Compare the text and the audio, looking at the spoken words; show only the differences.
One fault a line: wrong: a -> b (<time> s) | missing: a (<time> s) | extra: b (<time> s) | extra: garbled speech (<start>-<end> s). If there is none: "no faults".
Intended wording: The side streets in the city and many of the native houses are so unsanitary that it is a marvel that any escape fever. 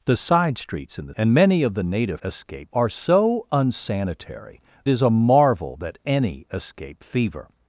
missing: city (1.1 s)
wrong: houses -> escape (2.2 s)
missing: that it (4.6 s)